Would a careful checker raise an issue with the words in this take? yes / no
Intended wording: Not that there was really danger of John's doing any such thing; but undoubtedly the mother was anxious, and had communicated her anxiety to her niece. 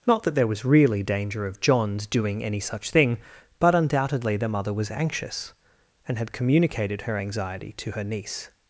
no